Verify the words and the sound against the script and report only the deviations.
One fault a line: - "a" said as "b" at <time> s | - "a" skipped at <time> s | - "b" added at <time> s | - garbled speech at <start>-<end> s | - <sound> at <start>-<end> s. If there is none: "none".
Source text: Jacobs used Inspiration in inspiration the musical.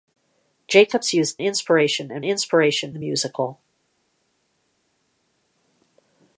none